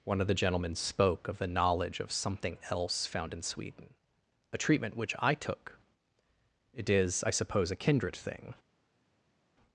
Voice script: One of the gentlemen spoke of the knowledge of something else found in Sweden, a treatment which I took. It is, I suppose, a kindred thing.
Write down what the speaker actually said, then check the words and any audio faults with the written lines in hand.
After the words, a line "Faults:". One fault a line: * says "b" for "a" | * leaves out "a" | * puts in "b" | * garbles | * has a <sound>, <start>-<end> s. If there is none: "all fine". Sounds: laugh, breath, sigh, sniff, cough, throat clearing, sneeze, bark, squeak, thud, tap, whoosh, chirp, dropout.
One of the gentlemen spoke of the knowledge of something else found in Sweden, a treatment which I took. It is, I suppose, a kindred thing.
Faults:
all fine